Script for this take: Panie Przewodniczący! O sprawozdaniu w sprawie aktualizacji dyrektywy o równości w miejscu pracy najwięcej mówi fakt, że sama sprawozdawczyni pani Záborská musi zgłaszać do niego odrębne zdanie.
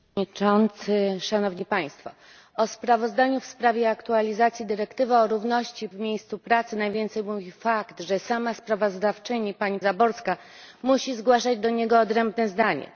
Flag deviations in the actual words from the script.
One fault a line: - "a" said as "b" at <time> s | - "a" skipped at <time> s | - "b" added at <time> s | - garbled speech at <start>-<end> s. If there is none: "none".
none